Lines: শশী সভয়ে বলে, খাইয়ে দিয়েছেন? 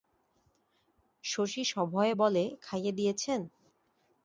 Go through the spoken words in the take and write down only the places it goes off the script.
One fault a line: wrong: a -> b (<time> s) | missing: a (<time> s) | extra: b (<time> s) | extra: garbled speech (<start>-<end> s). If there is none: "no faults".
no faults